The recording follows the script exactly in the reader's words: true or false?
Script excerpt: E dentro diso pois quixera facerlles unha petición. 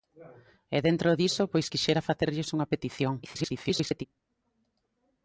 false